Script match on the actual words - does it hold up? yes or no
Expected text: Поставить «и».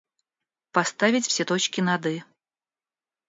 no